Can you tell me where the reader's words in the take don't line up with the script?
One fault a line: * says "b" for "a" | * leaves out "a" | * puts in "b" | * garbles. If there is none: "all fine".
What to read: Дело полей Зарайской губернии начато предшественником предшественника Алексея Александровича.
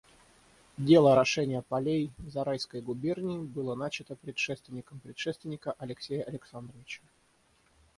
* puts in "орошения"
* puts in "было"